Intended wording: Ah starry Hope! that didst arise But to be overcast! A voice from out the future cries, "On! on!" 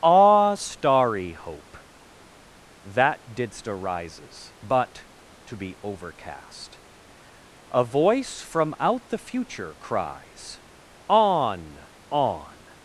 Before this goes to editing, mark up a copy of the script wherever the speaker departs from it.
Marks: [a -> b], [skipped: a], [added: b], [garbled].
Ah starry Hope! that didst [arise -> arises] But to be overcast! A voice from out the future cries, "On! on!"